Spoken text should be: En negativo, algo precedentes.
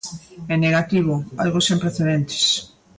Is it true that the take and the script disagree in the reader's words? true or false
true